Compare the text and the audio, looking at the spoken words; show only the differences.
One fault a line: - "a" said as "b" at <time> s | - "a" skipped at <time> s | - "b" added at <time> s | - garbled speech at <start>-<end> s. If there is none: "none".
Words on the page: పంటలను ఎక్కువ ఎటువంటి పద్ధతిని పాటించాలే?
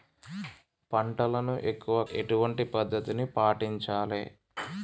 none